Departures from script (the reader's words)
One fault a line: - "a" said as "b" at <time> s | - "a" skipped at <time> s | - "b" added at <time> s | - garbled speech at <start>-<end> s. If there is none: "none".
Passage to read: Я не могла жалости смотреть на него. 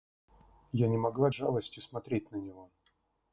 none